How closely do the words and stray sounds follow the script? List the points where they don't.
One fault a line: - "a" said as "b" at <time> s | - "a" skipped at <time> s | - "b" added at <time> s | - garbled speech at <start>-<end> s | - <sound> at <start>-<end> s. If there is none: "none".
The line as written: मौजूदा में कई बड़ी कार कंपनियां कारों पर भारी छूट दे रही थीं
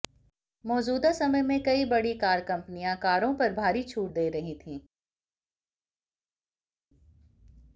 - "समय" added at 1.1 s